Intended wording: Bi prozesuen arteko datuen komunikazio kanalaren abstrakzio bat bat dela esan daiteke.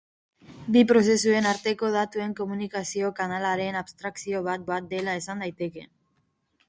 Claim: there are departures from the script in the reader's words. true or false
false